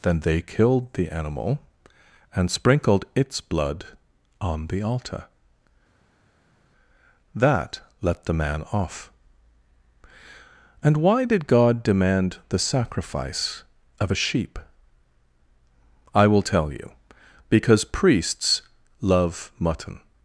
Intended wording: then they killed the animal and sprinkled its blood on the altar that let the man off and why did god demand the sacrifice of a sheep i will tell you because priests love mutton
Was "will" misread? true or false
false